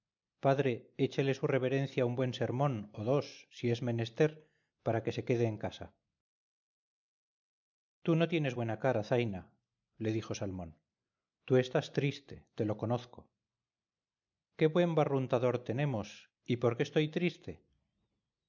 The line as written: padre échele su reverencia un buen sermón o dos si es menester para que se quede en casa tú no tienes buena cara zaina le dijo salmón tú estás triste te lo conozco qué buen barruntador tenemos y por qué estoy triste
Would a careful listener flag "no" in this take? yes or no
no